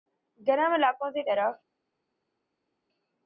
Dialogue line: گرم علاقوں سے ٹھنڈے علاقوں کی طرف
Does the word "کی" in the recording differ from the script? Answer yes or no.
yes